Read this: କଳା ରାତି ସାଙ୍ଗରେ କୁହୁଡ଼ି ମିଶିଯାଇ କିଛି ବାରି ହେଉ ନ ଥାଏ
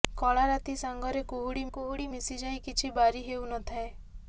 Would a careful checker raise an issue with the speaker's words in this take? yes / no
yes